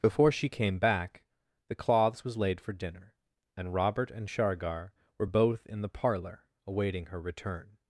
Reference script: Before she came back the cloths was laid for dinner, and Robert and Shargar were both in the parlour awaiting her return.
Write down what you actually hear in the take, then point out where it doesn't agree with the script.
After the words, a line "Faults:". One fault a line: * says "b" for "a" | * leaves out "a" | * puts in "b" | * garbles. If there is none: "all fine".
Before she came back the cloths was laid for dinner, and Robert and Shargar were both in the parlour awaiting her return.
Faults:
all fine